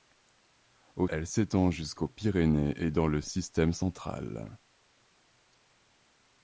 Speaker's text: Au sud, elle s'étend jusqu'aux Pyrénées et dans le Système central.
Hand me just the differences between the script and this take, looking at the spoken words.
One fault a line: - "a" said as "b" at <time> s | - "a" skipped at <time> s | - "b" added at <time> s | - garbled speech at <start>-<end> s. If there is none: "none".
- "sud" skipped at 1.1 s